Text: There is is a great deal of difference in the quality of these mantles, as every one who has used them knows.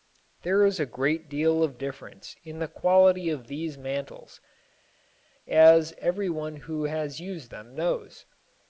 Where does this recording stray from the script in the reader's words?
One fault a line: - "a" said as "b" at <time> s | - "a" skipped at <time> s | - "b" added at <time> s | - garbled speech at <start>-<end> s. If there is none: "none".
- "is" skipped at 0.8 s